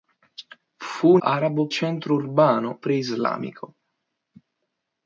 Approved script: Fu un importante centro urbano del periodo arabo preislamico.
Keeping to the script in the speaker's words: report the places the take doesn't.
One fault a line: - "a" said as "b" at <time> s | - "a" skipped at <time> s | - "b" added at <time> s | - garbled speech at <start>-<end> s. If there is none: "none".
- "importante" said as "arabo" at 1.2 s
- "del periodo arabo" skipped at 2.8 s